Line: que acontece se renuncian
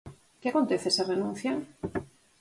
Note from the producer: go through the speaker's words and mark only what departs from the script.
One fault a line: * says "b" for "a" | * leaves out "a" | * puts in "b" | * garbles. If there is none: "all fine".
all fine